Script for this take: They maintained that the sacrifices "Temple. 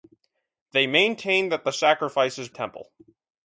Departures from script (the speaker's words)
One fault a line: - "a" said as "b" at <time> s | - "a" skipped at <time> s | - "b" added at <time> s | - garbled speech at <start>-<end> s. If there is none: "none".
none